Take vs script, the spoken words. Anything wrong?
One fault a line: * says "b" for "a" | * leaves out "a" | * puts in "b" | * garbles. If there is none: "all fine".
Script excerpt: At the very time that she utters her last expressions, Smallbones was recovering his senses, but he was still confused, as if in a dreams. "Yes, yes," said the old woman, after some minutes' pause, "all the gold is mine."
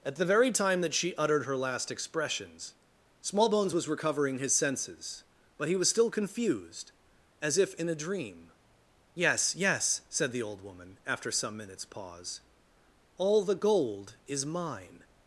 * says "uttered" for "utters"
* says "dream" for "dreams"